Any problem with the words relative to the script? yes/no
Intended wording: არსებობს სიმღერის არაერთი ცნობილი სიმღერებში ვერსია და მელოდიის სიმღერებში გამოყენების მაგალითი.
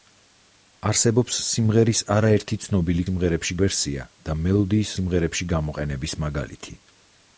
no